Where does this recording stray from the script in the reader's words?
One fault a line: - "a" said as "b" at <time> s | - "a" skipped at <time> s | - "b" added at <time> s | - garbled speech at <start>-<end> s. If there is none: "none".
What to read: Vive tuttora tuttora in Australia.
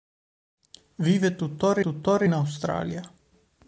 none